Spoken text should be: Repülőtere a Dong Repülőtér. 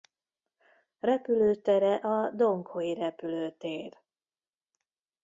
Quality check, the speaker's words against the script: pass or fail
fail